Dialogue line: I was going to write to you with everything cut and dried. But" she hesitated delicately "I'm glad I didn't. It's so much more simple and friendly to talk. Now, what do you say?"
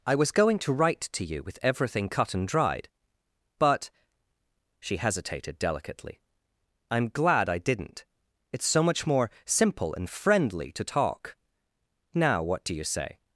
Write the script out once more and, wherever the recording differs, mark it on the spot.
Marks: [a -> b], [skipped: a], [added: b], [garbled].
I was going to write to you with everything cut and dried. But" she hesitated delicately "I'm glad I didn't. It's so much more simple and friendly to talk. Now, what do you say?"